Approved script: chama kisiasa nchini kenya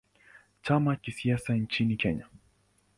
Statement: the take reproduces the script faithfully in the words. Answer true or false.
true